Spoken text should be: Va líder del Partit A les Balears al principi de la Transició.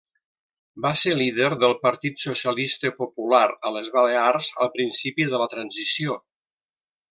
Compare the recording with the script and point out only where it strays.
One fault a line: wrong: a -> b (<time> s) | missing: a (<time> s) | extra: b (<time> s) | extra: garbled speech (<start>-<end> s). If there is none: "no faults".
extra: ser (1.0 s)
extra: Socialista Popular (2.2 s)